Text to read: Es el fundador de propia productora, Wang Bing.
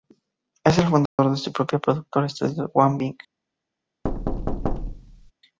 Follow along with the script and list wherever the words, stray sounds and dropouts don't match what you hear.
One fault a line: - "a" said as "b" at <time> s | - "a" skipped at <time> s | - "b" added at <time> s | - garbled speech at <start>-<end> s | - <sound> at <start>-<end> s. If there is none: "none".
- dropout at 1.1-1.2 s
- "su" added at 1.4 s
- "Estudios" added at 2.2 s
- thud at 4.0-5.3 s